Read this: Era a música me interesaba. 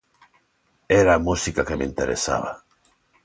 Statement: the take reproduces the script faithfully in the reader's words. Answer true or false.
false